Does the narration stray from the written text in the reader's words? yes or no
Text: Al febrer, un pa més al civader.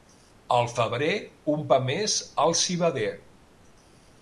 no